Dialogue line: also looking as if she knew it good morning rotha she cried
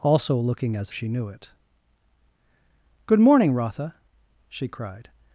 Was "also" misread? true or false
false